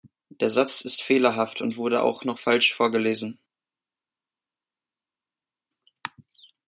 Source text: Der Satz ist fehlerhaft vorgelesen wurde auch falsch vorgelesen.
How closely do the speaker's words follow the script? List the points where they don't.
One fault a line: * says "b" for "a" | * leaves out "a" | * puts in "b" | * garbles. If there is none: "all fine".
* says "und" for "vorgelesen"
* puts in "noch"